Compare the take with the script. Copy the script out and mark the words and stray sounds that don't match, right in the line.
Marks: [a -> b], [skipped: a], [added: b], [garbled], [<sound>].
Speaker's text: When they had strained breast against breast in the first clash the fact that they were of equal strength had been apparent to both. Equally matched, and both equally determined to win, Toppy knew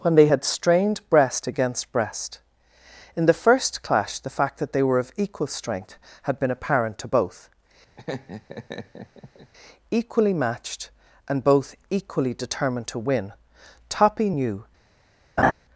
When they had strained breast against breast in the first clash the fact that they were of equal strength had been apparent to both. [laugh] Equally matched, and both equally determined to win, Toppy knew [laugh]